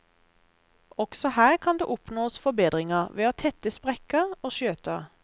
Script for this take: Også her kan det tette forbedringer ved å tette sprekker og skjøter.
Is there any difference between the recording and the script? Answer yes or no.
yes